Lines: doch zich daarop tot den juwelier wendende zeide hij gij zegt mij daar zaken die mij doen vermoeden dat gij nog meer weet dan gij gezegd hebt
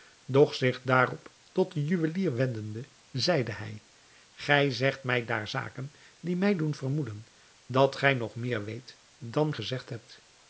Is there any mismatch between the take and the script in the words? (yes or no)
yes